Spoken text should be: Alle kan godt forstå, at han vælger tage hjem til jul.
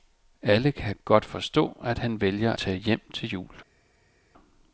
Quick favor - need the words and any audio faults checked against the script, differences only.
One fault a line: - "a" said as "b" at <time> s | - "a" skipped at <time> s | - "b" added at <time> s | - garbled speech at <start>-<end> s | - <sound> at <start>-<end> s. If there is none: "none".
none